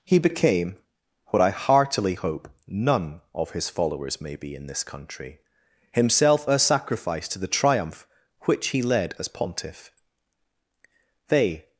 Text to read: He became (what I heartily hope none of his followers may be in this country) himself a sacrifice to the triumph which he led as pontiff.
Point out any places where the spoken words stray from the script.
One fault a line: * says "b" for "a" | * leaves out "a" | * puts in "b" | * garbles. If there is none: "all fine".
* puts in "They"